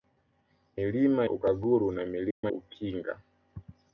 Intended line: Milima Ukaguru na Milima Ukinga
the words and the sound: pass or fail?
fail